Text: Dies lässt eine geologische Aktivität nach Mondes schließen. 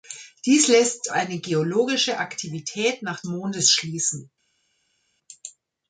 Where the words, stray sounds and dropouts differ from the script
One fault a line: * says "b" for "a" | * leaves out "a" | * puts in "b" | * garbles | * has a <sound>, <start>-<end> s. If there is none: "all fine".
all fine